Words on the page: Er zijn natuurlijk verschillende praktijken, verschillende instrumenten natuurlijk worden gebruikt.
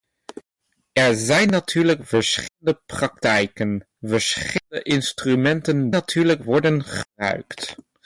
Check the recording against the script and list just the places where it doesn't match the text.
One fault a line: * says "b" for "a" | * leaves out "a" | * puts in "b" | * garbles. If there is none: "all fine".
all fine